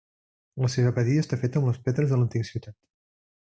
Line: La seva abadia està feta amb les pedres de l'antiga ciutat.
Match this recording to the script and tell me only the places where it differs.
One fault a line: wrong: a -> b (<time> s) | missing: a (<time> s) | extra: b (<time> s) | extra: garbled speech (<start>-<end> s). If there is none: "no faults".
no faults